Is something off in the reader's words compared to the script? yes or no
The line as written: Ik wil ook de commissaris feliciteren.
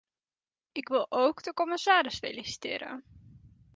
no